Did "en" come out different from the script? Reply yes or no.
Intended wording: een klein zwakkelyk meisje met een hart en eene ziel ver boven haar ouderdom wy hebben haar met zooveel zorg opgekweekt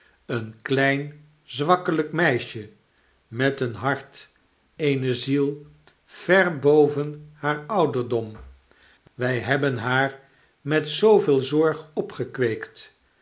yes